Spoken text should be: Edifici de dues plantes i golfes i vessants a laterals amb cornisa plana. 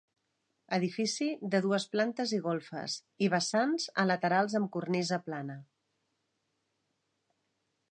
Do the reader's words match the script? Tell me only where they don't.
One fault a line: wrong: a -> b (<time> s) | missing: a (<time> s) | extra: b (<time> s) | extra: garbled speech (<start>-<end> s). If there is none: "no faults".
no faults